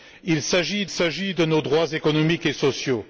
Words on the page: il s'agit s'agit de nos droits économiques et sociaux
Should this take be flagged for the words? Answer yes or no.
no